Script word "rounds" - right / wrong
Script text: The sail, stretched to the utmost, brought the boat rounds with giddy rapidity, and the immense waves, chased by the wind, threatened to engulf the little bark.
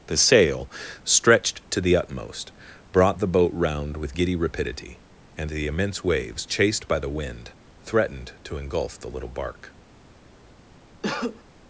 wrong